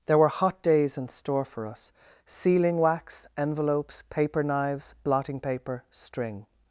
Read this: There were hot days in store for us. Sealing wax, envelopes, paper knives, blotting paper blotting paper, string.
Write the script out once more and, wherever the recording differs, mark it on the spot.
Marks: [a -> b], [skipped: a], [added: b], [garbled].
There were hot days in store for us. Sealing wax, envelopes, paper knives, blotting paper [skipped: blotting paper,] string.